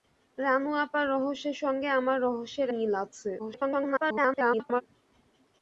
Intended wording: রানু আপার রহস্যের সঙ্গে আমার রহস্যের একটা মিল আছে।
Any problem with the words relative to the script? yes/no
yes